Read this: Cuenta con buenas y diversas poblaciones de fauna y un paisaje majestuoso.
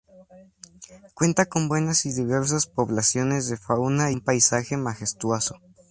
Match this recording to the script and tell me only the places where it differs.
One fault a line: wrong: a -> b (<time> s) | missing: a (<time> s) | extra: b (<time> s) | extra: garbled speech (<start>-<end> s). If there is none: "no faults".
missing: y (4.1 s)